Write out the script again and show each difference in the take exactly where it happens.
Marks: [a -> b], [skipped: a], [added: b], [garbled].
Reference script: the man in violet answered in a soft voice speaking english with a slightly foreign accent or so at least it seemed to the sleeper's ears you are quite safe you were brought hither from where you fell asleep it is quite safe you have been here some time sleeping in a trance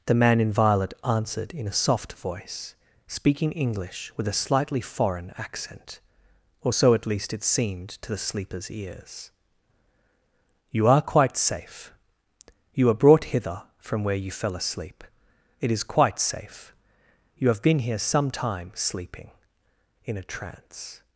the man in violet answered in a soft voice speaking english with a slightly foreign accent or so at least it seemed to the sleeper's ears you are quite safe you were brought hither from where you fell asleep it is quite safe you have been here some time sleeping in a trance